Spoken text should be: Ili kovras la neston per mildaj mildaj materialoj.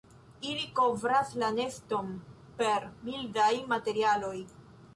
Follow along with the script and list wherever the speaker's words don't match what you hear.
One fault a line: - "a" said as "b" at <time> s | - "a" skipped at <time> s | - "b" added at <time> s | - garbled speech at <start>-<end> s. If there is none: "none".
- "mildaj" skipped at 3.5 s